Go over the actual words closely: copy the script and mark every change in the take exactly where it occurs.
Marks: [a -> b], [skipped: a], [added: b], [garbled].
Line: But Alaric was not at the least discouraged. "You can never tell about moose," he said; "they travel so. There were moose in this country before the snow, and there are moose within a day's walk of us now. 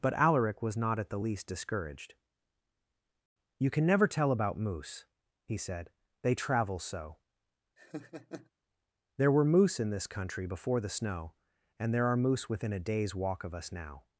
But Alaric was not at the least discouraged. "You can never tell about moose," he said; "they travel so. There were moose in this country before the snow, and there are moose within a day's walk of us now.